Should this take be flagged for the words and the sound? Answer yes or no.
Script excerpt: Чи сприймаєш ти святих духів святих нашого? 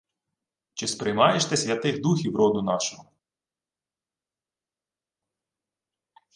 yes